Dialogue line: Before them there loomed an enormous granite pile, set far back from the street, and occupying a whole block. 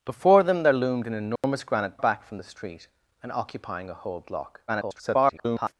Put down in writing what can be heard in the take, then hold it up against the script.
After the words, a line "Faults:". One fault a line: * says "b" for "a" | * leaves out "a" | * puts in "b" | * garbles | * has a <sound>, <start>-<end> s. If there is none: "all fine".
Before them there loomed an enormous granite back from the street, and occupying a whole block. [garbled]
Faults:
* has a dropout, 1.4-1.4 s
* leaves out "pile set far"
* garbles